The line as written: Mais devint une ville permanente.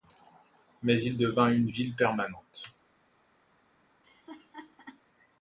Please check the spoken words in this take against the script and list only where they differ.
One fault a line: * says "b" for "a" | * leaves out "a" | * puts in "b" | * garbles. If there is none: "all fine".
* puts in "il"